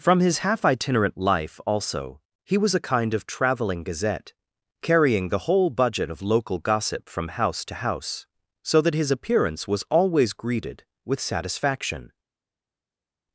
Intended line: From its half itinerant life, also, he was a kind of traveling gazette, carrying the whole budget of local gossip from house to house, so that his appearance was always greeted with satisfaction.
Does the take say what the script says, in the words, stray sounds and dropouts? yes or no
no